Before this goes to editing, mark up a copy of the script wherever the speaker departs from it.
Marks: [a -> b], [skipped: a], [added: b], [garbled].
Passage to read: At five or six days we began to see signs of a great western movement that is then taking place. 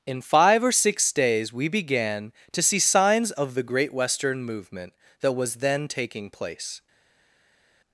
[At -> In] five or six days we began to see signs of [a -> the] great western movement that [is -> was] then taking place.